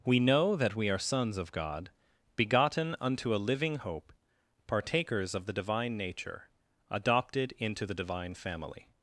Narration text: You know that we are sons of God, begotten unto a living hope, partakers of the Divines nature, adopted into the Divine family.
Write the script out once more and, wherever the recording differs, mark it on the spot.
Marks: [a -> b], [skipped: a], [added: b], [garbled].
[You -> We] know that we are sons of God, begotten unto a living hope, partakers of the [Divines -> Divine] nature, adopted into the Divine family.